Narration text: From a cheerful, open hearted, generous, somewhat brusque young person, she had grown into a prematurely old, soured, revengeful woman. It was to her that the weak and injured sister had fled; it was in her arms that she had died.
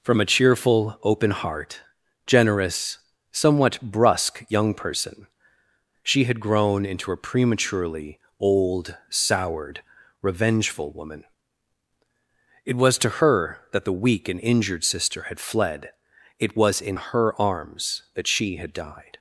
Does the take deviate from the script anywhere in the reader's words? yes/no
yes